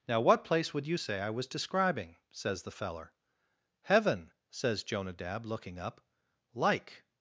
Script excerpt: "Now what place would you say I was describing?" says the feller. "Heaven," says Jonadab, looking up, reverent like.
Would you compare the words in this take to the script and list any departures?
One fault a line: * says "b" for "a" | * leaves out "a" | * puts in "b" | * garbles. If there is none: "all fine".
* leaves out "reverent"